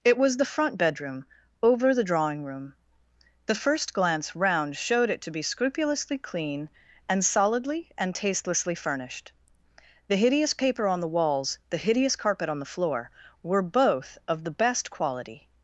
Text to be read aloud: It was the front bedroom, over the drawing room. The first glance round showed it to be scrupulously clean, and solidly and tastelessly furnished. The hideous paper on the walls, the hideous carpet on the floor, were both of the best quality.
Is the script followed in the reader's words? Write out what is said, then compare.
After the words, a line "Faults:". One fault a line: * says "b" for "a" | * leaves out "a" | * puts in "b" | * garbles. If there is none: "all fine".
It was the front bedroom, over the drawing room. The first glance round showed it to be scrupulously clean, and solidly and tastelessly furnished. The hideous paper on the walls, the hideous carpet on the floor, were both of the best quality.
Faults:
all fine